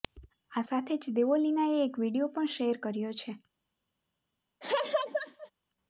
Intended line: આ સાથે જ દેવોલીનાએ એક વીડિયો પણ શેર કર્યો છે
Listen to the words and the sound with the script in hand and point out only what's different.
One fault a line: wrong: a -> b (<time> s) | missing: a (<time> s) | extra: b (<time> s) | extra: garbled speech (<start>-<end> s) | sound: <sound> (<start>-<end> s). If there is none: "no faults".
sound: laugh (4.6-5.5 s)